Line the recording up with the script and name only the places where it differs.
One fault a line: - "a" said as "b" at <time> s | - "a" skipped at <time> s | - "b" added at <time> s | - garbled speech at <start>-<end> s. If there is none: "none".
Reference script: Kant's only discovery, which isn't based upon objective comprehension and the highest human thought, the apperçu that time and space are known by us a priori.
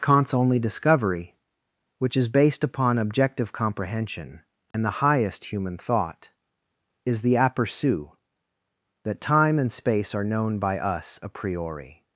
- "isn't" said as "is" at 2.2 s
- "is" added at 7.0 s